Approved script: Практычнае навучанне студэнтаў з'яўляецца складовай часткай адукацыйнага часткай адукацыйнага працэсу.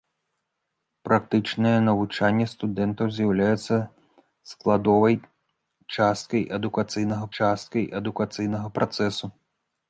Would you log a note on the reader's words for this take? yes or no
no